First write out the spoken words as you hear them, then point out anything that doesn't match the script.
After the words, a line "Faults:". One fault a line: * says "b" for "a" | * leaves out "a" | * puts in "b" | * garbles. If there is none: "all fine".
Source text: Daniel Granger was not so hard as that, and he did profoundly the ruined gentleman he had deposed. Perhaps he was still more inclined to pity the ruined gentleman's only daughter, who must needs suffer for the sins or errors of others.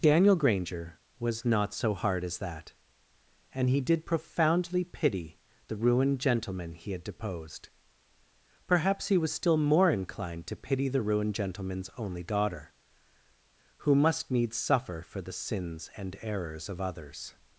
Daniel Granger was not so hard as that, and he did profoundly pity the ruined gentleman he had deposed. Perhaps he was still more inclined to pity the ruined gentleman's only daughter, who must needs suffer for the sins and errors of others.
Faults:
* puts in "pity"
* says "and" for "or"